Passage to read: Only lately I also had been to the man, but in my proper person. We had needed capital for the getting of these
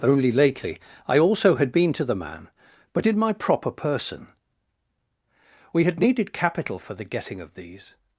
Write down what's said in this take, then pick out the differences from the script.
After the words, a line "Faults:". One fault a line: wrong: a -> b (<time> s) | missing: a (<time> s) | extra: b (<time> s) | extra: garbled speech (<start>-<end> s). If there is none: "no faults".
Only lately I also had been to the man, but in my proper person. We had needed capital for the getting of these
Faults:
no faults